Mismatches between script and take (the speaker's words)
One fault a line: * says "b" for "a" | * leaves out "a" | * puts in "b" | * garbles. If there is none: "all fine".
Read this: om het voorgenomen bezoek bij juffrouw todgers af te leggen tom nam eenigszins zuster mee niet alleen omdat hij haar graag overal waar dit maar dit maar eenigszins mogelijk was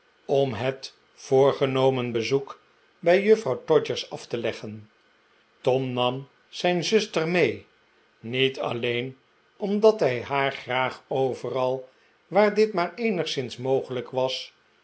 * says "zijn" for "eenigszins"
* leaves out "dit maar"